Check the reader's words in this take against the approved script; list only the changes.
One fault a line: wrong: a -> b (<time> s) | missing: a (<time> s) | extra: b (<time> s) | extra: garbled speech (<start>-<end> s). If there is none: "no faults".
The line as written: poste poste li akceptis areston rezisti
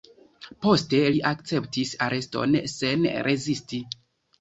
missing: poste (1.0 s)
extra: sen (2.8 s)